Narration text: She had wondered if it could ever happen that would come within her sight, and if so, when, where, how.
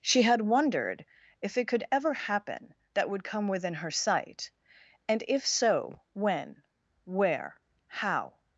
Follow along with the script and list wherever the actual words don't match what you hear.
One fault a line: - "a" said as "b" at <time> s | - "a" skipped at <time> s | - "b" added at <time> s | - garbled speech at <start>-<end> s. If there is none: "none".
none